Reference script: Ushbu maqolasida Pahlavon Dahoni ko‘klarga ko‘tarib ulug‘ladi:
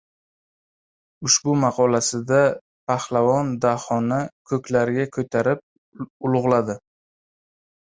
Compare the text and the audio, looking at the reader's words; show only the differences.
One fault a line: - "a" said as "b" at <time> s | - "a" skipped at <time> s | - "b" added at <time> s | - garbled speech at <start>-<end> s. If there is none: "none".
none